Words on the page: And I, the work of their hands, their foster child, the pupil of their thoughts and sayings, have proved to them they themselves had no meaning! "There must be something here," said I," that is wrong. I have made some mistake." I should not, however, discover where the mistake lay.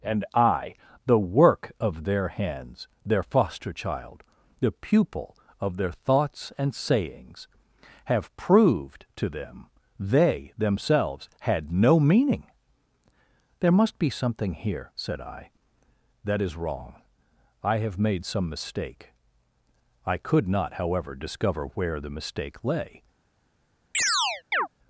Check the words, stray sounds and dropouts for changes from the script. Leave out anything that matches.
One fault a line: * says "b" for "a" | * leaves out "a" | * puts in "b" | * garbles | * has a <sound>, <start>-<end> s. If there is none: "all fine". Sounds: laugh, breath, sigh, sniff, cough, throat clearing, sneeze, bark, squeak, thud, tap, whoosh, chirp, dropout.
* says "could" for "should"
* has a chirp, 23.9-24.7 s